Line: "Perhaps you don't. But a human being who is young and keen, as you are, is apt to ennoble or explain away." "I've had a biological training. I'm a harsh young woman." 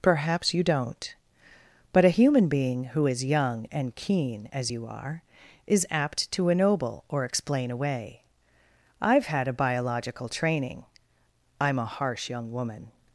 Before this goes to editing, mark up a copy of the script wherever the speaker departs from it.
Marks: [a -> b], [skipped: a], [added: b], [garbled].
"Perhaps you don't. But a human being who is young and keen, as you are, is apt to ennoble or explain away." "I've had a biological training. I'm a harsh young woman."